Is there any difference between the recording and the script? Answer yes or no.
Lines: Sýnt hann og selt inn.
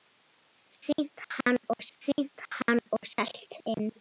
yes